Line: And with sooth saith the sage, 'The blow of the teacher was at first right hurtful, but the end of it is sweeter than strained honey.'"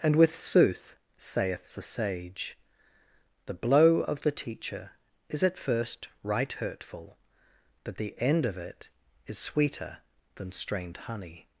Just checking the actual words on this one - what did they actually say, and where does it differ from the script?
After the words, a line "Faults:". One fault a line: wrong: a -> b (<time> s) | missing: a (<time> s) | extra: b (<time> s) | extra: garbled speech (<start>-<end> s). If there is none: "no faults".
And with sooth saith the sage, 'The blow of the teacher is at first right hurtful, but the end of it is sweeter than strained honey.'"
Faults:
wrong: was -> is (5.3 s)